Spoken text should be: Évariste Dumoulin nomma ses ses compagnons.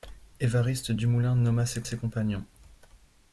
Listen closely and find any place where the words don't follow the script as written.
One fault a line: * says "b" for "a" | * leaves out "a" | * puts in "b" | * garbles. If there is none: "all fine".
all fine